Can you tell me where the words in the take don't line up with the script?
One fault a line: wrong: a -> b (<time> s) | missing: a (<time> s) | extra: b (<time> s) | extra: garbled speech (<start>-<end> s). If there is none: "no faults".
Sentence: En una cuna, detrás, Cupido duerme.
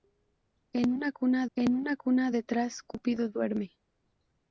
extra: en una cuna (1.6 s)